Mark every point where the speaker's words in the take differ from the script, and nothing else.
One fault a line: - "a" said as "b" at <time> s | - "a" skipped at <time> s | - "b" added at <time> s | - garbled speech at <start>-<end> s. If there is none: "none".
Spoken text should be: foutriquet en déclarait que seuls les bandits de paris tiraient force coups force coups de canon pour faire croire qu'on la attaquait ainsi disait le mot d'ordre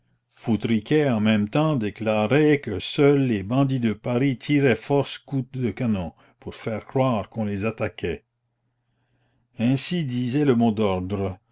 - "même temps" added at 1.2 s
- "force coups" skipped at 5.5 s
- "la" said as "les" at 7.4 s